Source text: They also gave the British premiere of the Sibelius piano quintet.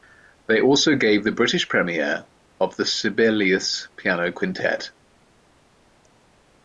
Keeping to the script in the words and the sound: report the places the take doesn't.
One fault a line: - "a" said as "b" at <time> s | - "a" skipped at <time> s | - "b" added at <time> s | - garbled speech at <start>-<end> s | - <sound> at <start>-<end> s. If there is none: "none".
none